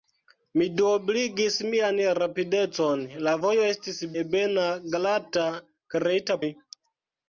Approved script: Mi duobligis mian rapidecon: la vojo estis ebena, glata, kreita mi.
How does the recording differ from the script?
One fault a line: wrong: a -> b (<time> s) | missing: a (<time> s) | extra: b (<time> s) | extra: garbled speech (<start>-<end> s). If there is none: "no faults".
no faults